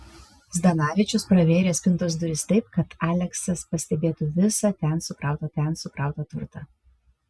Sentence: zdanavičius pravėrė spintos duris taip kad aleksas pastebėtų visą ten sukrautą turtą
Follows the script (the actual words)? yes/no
no